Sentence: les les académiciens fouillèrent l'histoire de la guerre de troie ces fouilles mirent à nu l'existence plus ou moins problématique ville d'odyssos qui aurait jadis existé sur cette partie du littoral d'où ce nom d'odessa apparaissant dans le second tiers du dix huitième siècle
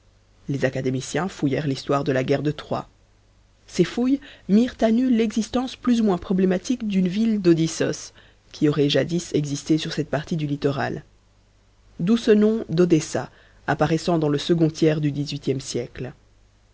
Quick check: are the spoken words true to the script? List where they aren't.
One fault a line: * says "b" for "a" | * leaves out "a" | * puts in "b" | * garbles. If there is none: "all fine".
* leaves out "les"
* puts in "d'une"